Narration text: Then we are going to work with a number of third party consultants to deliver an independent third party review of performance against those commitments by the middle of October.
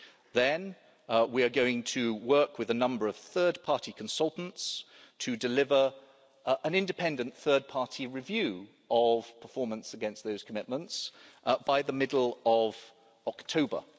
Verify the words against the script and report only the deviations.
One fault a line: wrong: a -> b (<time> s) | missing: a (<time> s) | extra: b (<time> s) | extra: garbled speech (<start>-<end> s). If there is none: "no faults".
no faults